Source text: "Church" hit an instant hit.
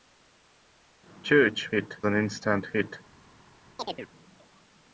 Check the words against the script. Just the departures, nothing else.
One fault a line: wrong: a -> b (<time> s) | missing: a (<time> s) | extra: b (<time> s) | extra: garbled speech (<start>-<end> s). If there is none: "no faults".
no faults